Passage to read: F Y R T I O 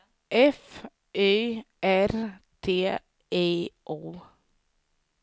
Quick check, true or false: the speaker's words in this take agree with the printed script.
true